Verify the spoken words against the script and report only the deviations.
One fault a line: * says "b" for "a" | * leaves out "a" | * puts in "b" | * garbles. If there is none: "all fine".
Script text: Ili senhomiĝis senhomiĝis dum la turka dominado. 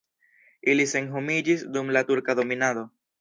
* leaves out "senhomiĝis"